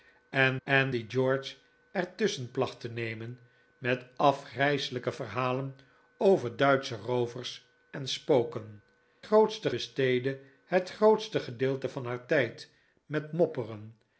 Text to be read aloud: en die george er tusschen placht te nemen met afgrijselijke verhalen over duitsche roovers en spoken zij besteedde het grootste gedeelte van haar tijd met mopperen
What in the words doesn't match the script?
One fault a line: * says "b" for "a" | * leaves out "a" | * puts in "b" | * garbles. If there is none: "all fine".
* puts in "en"
* says "grootste" for "zij"